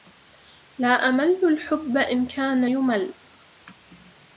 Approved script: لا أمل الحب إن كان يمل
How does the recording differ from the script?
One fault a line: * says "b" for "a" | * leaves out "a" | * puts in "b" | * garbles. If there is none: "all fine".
all fine